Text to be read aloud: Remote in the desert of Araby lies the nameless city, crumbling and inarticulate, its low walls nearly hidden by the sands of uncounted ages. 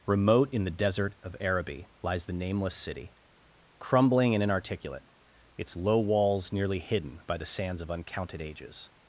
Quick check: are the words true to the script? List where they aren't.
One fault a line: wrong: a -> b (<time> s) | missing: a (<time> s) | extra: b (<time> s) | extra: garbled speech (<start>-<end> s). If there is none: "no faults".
no faults